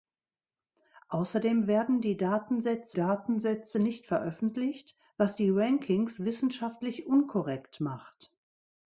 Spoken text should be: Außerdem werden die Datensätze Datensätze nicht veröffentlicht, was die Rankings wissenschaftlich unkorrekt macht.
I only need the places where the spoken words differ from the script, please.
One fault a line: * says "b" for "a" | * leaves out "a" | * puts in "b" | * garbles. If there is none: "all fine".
all fine